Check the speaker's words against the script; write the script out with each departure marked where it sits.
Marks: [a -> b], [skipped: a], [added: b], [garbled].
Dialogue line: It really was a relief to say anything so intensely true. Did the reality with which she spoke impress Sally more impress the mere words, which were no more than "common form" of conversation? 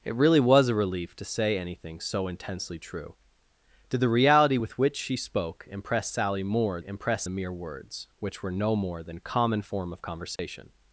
It really was a relief to say anything so intensely true. Did the reality with which she spoke impress Sally more impress the mere words, which were no more than "common form" of conversation?